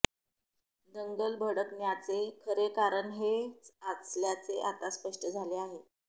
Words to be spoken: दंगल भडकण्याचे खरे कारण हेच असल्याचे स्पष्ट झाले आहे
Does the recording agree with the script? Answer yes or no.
no